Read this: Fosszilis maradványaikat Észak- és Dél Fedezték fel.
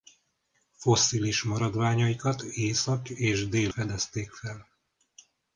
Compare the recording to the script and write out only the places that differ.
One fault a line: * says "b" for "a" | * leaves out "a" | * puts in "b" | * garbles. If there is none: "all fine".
all fine